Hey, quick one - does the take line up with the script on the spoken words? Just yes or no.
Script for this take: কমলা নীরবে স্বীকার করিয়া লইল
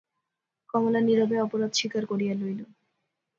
no